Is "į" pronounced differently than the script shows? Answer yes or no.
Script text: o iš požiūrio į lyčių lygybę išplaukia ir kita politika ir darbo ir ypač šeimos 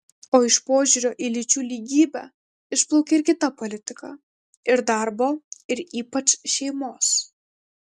no